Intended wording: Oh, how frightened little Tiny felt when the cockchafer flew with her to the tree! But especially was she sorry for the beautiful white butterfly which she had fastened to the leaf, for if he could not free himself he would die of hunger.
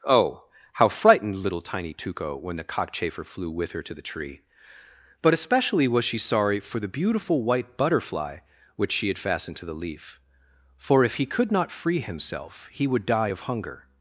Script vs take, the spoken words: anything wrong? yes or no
yes